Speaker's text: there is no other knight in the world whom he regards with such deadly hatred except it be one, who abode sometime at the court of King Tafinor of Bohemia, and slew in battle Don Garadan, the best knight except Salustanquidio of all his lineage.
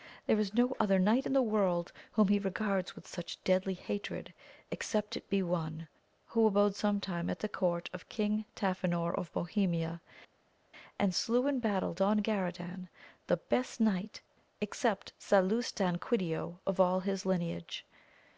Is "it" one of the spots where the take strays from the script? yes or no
no